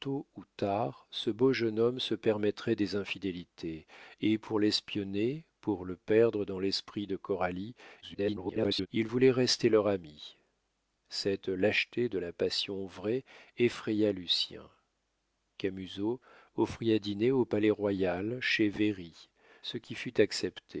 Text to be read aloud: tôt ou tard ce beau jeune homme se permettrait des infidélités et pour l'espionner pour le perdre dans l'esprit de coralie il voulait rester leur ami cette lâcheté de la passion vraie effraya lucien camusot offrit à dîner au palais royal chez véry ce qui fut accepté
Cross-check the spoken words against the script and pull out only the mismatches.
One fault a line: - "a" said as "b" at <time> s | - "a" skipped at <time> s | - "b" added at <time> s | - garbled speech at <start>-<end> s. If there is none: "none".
- garbled speech at 8.0-8.9 s